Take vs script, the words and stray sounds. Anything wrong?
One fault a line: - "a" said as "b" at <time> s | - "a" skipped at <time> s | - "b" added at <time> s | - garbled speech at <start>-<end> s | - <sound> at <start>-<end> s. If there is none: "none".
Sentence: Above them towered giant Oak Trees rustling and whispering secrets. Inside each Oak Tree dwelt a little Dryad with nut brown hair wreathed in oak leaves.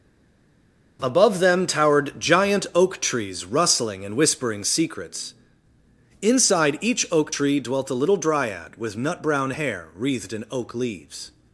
none